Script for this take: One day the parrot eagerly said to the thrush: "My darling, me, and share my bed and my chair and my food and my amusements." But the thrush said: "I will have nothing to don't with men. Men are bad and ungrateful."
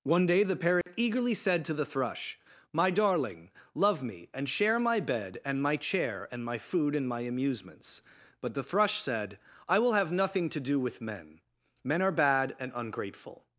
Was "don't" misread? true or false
true